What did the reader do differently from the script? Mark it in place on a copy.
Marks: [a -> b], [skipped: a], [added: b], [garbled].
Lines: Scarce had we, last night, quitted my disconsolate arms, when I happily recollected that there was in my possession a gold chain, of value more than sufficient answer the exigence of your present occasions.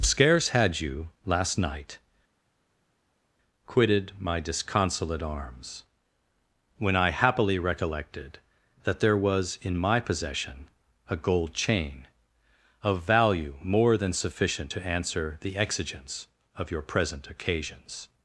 Scarce had [we, -> you] last night, quitted my disconsolate arms, when I happily recollected that there was in my possession a gold chain, of value more than sufficient [added: to] answer the exigence of your present occasions.